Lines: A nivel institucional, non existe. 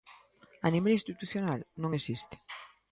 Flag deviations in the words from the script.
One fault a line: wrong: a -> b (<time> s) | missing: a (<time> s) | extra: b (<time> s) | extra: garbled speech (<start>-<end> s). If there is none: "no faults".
no faults